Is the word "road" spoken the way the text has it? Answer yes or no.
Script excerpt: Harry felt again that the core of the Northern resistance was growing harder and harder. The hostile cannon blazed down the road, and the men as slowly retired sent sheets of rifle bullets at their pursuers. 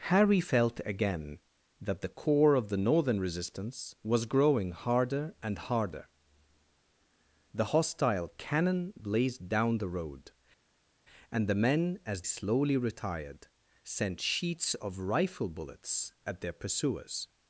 yes